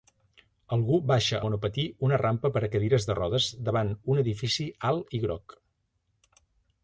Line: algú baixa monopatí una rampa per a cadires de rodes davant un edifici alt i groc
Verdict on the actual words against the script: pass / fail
pass